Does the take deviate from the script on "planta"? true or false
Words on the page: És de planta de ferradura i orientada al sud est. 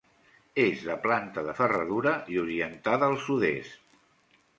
false